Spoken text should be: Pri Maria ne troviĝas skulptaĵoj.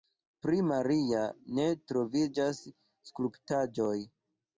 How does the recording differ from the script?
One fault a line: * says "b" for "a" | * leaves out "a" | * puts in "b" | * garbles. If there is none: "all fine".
all fine